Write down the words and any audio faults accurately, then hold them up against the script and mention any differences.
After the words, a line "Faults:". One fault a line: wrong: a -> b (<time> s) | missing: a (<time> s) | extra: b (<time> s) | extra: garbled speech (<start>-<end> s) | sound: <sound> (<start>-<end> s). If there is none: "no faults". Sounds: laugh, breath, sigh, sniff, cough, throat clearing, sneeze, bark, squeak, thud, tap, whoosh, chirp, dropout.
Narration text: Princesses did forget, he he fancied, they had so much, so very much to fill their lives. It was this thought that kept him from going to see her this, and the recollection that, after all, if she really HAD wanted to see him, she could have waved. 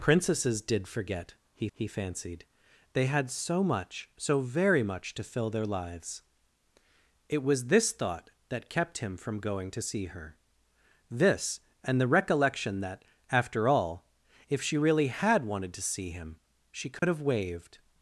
Princesses did forget, he he fancied, they had so much, so very much to fill their lives. It was this thought that kept him from going to see her this, and the recollection that, after all, if she really HAD wanted to see him, she could have waved.
Faults:
sound: dropout (17.0-17.0 s)